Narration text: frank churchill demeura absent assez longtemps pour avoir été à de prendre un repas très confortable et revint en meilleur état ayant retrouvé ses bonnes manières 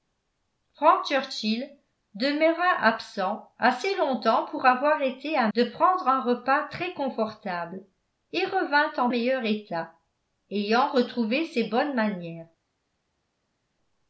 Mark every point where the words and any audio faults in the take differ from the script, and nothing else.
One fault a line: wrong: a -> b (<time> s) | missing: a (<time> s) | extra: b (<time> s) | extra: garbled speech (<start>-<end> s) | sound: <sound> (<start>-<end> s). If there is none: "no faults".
no faults